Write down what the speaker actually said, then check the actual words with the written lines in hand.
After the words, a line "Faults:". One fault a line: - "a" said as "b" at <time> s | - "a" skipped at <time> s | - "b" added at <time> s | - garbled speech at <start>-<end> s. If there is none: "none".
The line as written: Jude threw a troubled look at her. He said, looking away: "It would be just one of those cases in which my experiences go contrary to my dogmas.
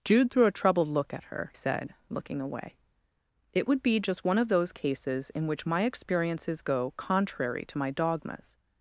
Jude threw a troubled look at her. Said, looking away: "It would be just one of those cases in which my experiences go contrary to my dogmas.
Faults:
- "He" skipped at 1.5 s